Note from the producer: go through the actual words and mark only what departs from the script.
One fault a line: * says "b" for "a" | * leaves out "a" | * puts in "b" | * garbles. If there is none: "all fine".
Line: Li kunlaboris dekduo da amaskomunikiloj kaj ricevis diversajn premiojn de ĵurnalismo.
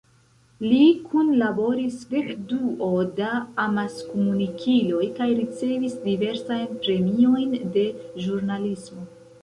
all fine